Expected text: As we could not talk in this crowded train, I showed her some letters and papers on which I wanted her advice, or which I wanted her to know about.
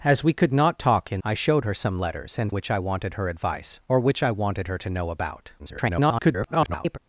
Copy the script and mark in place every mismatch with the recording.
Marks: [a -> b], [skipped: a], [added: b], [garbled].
As we could not talk in [skipped: this crowded train,] I showed her some letters and [skipped: papers on] which I wanted her advice, or which I wanted her to know about. [garbled]